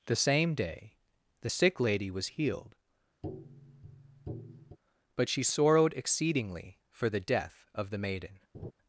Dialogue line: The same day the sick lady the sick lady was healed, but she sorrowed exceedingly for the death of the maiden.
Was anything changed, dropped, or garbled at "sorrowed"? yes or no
no